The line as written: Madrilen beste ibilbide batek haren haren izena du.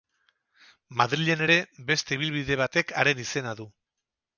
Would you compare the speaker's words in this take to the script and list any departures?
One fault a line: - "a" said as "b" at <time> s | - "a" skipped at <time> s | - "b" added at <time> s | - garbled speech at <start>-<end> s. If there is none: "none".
- "ere" added at 1.5 s
- "haren" skipped at 3.3 s